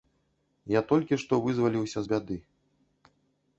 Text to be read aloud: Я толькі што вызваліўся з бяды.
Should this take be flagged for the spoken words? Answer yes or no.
no